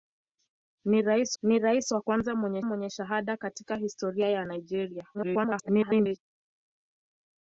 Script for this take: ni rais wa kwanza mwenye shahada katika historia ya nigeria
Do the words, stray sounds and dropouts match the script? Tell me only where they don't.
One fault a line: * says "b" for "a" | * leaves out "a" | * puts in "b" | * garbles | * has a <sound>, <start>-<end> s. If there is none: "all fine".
* puts in "ni rais"
* puts in "mwenye"
* garbles